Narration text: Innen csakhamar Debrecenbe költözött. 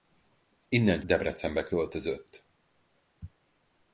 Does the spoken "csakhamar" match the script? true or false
false